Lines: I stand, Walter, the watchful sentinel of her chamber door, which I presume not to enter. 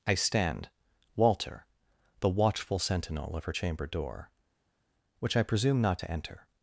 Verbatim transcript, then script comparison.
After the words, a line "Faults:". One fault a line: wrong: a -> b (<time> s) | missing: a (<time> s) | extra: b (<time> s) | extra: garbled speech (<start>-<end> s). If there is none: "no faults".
I stand, Walter, the watchful sentinel of her chamber door, which I presume not to enter.
Faults:
no faults